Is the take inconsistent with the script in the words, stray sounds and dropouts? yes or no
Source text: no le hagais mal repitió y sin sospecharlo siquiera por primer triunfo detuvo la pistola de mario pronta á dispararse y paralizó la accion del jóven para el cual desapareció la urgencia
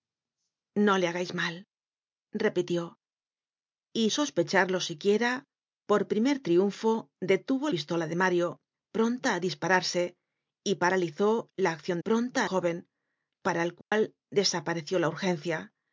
yes